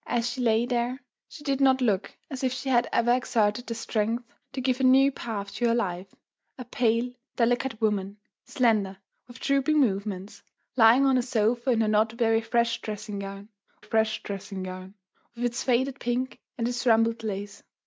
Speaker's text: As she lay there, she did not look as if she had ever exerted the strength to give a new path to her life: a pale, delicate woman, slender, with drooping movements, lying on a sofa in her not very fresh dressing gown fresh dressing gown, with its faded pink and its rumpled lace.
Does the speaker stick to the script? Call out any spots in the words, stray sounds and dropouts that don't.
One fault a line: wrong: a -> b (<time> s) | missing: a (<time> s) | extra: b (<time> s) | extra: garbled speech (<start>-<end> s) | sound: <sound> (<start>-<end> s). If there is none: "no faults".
no faults